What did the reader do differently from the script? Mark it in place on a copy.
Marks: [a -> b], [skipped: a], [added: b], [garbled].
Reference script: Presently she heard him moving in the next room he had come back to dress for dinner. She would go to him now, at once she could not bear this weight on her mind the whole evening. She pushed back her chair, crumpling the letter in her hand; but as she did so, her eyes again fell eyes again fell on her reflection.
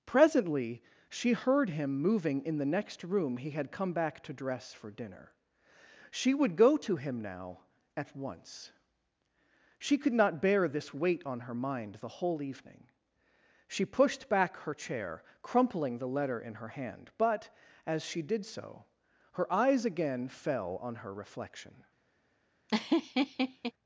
Presently she heard him moving in the next room he had come back to dress for dinner. She would go to him now, at once she could not bear this weight on her mind the whole evening. She pushed back her chair, crumpling the letter in her hand; but as she did so, her eyes again fell [skipped: eyes again fell] on her reflection.